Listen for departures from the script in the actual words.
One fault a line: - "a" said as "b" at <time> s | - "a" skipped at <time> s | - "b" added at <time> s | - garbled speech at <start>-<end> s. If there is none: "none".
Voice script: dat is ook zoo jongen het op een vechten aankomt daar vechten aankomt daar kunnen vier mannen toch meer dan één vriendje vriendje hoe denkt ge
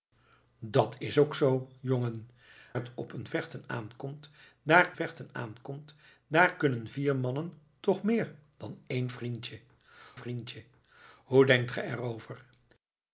none